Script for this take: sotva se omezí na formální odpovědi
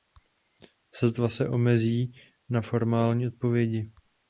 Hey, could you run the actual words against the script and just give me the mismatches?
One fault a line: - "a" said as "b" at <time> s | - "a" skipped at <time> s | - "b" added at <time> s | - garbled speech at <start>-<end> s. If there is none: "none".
none